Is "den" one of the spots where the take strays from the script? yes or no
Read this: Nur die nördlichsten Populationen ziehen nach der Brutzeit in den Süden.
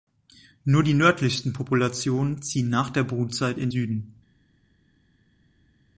yes